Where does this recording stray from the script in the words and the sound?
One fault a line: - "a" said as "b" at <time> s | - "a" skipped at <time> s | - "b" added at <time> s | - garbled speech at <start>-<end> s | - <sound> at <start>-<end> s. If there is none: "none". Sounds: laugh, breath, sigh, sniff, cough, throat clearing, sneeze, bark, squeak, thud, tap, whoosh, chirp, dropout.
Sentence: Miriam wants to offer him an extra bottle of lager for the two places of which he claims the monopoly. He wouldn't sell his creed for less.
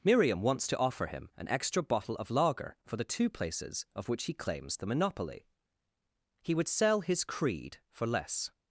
- "wouldn't" said as "would" at 6.5 s